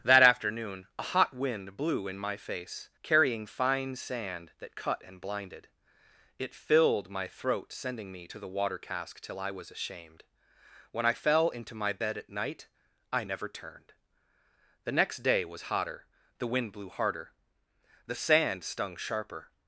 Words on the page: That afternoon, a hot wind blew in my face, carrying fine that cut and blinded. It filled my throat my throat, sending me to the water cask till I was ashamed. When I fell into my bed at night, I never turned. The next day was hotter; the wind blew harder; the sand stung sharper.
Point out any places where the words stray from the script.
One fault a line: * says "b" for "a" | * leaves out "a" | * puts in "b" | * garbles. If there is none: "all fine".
* puts in "sand"
* leaves out "my throat"